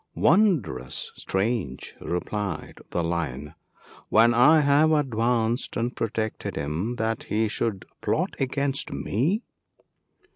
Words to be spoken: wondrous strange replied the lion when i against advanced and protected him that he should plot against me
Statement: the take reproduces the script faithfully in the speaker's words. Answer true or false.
false